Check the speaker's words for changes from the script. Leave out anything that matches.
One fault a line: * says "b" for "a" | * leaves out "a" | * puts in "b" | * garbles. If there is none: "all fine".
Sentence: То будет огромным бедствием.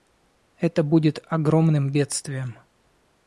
* says "Это" for "То"